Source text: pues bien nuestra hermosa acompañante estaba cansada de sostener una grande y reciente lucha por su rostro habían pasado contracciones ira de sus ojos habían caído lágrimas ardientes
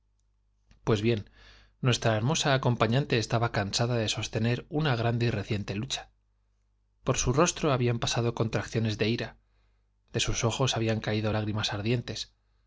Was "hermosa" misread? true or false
false